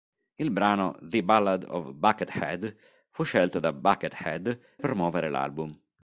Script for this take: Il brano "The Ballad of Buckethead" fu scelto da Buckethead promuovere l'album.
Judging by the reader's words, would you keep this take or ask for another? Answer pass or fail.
pass